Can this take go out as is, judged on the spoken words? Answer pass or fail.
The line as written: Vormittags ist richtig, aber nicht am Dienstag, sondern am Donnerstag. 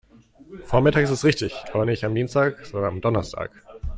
pass